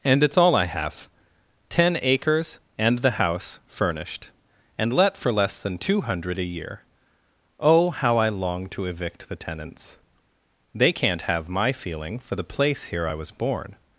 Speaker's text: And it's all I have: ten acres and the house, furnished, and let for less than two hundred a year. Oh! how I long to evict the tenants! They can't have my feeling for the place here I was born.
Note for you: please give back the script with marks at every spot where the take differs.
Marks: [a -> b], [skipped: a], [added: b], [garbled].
And it's all I have: ten acres and the house, furnished, and let for less than two hundred a year. Oh! how I long to evict the tenants! They can't have my feeling for the place here I was born.